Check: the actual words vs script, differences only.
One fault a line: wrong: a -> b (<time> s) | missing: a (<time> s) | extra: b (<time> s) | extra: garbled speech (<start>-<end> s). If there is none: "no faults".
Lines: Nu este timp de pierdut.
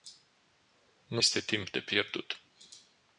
no faults